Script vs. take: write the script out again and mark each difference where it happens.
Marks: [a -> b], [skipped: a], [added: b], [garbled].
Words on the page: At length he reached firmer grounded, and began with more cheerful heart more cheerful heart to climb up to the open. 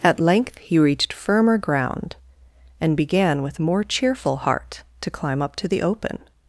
At length he reached firmer [grounded, -> ground] and began with more cheerful heart [skipped: more cheerful heart] to climb up to the open.